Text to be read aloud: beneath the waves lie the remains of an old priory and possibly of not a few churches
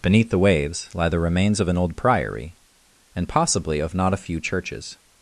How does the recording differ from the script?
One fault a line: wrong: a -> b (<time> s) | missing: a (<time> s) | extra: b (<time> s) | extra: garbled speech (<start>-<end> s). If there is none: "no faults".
no faults